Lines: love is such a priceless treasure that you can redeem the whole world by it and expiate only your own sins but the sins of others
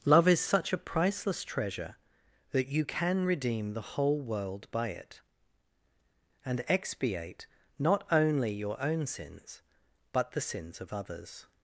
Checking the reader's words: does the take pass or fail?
fail